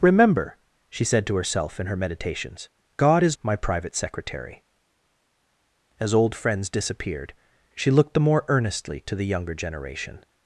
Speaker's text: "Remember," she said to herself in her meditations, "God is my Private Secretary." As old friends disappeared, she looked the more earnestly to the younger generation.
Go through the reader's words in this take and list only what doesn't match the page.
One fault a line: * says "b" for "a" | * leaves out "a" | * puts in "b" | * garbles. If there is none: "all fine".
all fine